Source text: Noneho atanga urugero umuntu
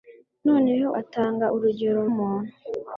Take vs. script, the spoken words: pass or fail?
pass